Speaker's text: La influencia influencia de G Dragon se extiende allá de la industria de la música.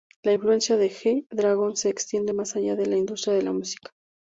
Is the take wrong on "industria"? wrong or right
right